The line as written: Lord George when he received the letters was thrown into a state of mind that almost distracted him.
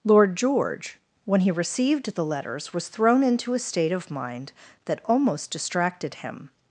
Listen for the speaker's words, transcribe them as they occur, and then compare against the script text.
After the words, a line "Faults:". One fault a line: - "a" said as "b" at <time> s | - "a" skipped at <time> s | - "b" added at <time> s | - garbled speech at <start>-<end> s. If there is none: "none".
Lord George when he received the letters was thrown into a state of mind that almost distracted him.
Faults:
none